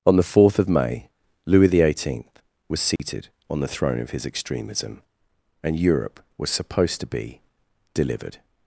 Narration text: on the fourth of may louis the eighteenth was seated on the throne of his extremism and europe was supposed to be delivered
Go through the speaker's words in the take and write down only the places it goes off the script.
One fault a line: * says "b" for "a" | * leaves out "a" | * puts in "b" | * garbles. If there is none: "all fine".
all fine